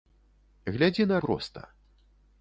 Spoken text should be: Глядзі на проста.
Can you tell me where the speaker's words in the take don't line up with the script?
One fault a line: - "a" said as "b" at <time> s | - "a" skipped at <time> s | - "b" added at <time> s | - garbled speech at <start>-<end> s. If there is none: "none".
none